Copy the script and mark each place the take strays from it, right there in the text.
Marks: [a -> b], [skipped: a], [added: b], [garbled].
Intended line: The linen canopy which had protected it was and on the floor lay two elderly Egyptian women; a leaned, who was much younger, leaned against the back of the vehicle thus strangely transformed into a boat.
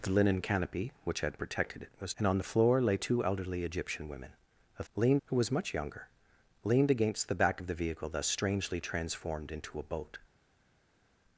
The linen canopy which had protected it was and on the floor lay two elderly Egyptian women; a leaned, who was much younger, leaned against the back of the vehicle thus strangely transformed into a boat.